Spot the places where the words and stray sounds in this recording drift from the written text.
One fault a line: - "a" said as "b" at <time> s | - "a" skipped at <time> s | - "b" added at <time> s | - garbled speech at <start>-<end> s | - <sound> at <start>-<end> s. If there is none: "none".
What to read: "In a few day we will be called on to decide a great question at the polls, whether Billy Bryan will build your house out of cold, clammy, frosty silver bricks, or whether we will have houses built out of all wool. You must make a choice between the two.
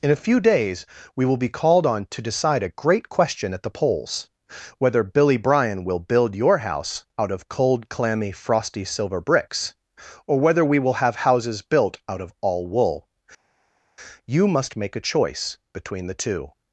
- "day" said as "days" at 0.4 s